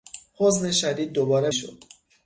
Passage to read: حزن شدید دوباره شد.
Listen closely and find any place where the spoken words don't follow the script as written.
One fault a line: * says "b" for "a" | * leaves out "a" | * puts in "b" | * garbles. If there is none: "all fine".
all fine